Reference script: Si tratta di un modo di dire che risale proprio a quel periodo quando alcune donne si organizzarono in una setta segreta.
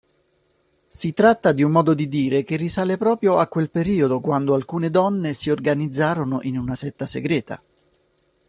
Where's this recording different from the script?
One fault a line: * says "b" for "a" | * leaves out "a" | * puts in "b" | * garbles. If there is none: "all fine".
all fine